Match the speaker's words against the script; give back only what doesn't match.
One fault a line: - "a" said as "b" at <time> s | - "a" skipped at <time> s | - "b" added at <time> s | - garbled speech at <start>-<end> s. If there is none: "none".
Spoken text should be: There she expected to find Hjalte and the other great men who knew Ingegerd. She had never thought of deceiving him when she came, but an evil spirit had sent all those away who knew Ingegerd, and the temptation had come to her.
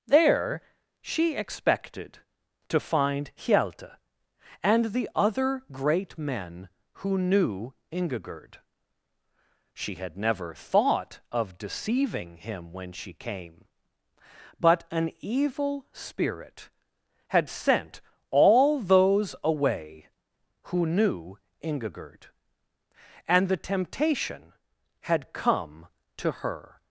none